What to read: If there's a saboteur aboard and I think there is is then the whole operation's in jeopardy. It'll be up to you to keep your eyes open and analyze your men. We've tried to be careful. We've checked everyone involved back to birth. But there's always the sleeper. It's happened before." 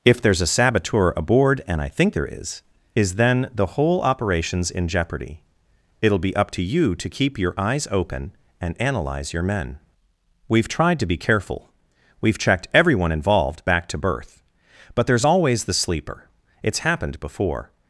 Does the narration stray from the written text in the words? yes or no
no